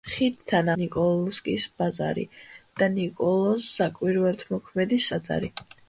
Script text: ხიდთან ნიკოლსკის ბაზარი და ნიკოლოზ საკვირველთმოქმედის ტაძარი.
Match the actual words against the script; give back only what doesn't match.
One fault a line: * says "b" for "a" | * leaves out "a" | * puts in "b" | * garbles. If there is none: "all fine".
all fine